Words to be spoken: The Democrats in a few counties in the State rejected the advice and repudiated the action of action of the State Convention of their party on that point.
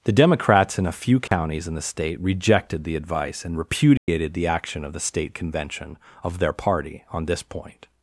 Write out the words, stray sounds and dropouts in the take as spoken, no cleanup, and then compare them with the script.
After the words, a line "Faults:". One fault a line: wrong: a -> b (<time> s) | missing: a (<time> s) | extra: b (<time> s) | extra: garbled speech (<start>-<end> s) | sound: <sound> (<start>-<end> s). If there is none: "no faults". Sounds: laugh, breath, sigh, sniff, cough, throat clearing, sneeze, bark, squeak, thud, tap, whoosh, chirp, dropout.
The Democrats in a few counties in the State rejected the advice and repudiated the action of the State Convention of their party on this point.
Faults:
sound: dropout (1.3-1.3 s)
sound: dropout (4.0-4.1 s)
missing: action of (4.9 s)
wrong: that -> this (7.2 s)